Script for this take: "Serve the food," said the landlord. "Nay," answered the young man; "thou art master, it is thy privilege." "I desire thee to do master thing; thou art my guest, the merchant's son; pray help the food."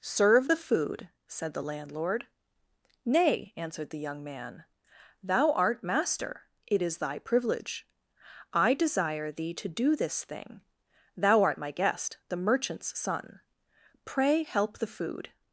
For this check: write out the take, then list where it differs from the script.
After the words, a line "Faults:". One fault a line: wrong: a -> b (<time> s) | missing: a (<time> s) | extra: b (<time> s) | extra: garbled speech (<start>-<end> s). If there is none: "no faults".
"Serve the food," said the landlord. "Nay," answered the young man; "thou art master, it is thy privilege." "I desire thee to do this thing; thou art my guest, the merchant's son; pray help the food."
Faults:
wrong: master -> this (10.0 s)